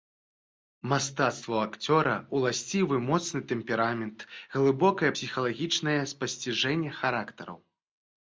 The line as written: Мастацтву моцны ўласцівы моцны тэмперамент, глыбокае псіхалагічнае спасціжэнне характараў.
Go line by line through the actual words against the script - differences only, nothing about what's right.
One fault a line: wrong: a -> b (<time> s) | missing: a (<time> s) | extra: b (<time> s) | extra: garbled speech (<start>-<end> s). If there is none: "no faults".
wrong: моцны -> акцёра (1.6 s)